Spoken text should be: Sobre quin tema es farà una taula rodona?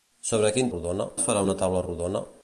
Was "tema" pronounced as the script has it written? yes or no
no